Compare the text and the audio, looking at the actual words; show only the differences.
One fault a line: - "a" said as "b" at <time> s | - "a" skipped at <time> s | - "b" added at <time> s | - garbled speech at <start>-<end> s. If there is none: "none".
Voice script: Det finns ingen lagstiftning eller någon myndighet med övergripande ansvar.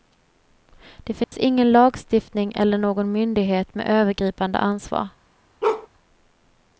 none